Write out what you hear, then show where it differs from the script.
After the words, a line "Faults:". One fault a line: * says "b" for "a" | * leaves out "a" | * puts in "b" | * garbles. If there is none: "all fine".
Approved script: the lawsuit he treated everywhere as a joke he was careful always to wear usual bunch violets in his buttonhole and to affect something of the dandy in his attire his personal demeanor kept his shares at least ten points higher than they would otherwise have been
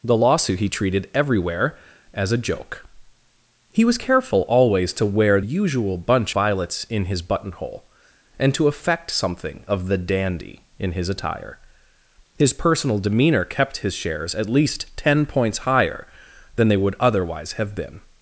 the lawsuit he treated everywhere as a joke he was careful always to wear usual bunch violets in his buttonhole and to affect something of the dandy in his attire his personal demeanor kept his shares at least ten points higher than they would otherwise have been
Faults:
all fine